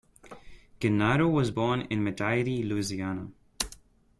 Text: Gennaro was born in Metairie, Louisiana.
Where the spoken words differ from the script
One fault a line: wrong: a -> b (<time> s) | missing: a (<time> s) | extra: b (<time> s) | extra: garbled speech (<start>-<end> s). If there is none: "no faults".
no faults